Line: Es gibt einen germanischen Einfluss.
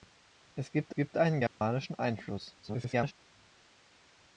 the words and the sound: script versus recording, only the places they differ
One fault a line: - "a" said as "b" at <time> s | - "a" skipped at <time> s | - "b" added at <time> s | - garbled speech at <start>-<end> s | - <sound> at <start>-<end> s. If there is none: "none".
- "gibt" added at 0.9 s
- dropout at 1.5-1.6 s
- garbled speech at 2.6-3.1 s